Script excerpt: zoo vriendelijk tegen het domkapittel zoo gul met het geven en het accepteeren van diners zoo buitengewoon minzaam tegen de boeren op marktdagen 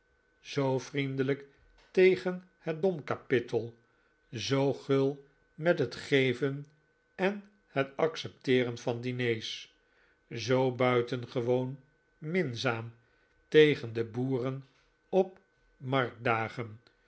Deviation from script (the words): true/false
false